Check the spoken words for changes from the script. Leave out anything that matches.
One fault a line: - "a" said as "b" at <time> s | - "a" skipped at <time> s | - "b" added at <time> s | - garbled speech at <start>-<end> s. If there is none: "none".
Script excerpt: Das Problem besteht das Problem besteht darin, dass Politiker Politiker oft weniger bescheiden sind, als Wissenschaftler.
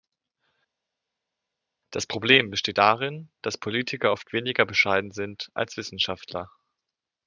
- "das Problem besteht" skipped at 2.8 s
- "Politiker" skipped at 4.1 s